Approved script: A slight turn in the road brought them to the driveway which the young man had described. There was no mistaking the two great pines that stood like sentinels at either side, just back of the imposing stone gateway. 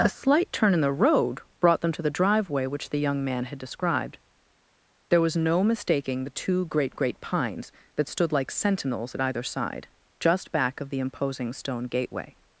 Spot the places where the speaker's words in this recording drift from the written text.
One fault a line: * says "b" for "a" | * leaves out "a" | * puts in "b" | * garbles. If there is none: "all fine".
* puts in "great"